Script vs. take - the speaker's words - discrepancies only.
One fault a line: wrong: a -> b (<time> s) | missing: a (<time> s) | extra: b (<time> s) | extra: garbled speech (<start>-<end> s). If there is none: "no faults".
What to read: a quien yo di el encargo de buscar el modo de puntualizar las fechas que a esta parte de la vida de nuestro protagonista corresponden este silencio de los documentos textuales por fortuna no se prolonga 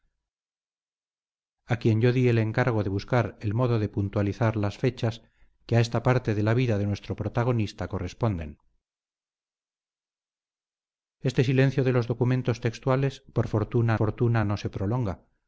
extra: fortuna (13.9 s)